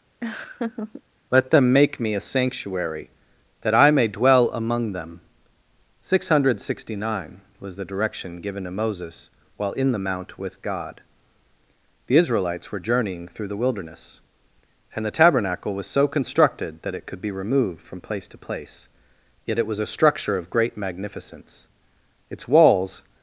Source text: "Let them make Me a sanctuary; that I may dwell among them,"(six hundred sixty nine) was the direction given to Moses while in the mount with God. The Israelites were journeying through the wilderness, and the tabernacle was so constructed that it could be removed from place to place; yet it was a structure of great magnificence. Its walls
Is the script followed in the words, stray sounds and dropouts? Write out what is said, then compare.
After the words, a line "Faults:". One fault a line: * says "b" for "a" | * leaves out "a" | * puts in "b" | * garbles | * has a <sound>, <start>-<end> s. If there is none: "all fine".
"Let them make Me a sanctuary; that I may dwell among them,"(six hundred sixty nine) was the direction given to Moses while in the mount with God. The Israelites were journeying through the wilderness, and the tabernacle was so constructed that it could be removed from place to place; yet it was a structure of great magnificence. Its walls
Faults:
* has a laugh, 0.2-1.0 s